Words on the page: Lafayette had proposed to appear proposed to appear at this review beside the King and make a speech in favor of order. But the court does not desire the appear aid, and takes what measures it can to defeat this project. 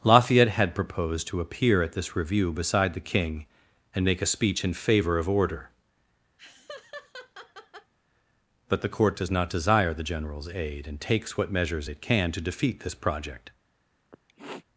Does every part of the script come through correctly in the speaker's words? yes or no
no